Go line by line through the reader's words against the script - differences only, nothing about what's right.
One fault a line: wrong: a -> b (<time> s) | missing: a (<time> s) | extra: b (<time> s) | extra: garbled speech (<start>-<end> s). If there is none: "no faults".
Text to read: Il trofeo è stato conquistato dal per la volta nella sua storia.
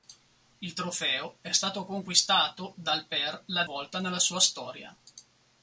no faults